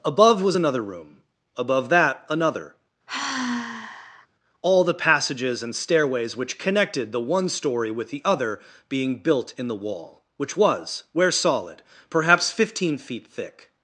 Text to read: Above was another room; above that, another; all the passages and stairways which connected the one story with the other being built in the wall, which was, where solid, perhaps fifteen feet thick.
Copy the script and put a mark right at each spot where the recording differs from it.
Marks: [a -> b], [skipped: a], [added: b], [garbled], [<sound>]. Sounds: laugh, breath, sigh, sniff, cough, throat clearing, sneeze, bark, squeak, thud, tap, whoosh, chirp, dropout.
Above was another room; above that, another; [sigh] all the passages and stairways which connected the one story with the other being built in the wall, which was, where solid, perhaps fifteen feet thick.